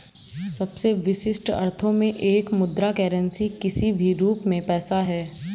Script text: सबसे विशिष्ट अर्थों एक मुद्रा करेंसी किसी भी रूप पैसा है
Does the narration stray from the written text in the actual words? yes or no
yes